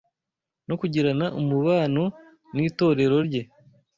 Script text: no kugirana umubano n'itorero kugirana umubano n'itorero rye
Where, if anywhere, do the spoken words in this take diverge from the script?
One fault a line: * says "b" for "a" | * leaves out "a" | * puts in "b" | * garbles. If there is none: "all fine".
* leaves out "kugirana umubano n'itorero"